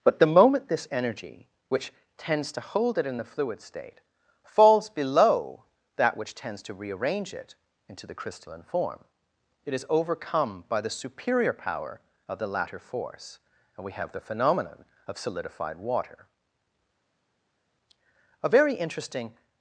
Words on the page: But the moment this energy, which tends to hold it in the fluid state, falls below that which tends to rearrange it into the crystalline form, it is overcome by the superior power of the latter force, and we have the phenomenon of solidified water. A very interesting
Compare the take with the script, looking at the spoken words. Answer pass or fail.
pass